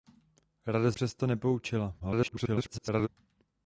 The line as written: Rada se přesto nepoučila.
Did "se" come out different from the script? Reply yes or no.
yes